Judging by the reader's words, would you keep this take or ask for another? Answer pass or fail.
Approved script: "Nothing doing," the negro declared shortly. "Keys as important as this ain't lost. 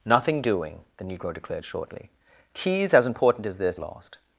fail